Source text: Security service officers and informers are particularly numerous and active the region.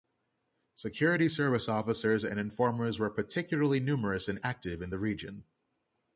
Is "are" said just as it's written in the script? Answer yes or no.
no